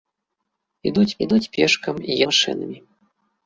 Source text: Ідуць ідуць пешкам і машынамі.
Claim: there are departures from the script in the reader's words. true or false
false